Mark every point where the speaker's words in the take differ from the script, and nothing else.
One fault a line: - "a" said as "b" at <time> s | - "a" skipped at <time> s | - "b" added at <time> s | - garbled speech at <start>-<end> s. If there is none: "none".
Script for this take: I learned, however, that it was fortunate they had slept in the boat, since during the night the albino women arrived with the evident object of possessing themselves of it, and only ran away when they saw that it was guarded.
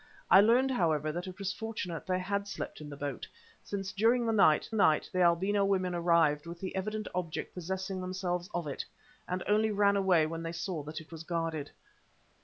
- "night" added at 4.7 s
- "of" skipped at 7.6 s